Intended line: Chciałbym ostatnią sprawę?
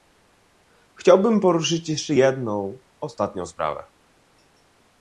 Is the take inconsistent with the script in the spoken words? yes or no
yes